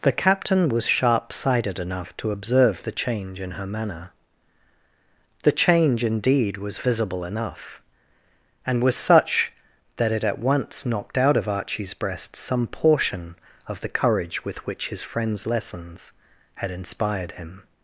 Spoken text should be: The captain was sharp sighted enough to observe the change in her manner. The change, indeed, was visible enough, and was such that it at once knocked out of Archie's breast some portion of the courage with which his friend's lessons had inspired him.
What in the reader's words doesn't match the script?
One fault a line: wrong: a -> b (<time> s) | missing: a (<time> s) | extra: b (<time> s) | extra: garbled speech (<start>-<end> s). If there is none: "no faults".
no faults